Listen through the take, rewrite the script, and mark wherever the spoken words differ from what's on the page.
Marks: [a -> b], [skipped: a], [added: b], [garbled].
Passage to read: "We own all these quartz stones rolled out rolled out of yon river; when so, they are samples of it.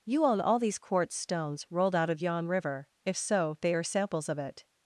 ["We -> You] own all these quartz stones rolled out [skipped: rolled out] of yon river; [when -> if] so, they are samples of it.